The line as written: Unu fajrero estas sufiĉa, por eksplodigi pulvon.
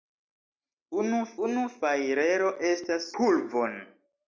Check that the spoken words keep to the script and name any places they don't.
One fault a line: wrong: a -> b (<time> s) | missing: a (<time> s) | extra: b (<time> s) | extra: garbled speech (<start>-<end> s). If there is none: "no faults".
extra: unu (1.5 s)
missing: sufiĉa por eksplodigi (3.1 s)